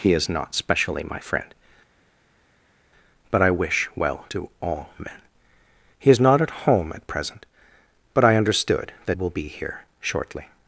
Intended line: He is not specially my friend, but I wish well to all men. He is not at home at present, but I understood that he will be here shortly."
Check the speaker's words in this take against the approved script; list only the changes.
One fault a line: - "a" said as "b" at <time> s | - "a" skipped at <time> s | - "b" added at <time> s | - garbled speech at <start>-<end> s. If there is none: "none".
- "he" skipped at 9.2 s